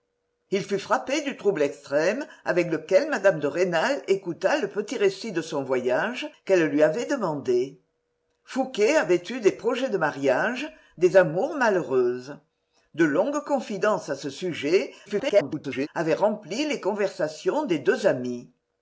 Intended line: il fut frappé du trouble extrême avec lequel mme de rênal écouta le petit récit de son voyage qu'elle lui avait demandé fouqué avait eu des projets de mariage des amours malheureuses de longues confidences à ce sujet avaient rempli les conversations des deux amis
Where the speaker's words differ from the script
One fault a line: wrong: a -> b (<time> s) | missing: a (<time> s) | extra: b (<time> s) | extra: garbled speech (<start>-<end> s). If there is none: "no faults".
extra: garbled speech (15.1-15.9 s)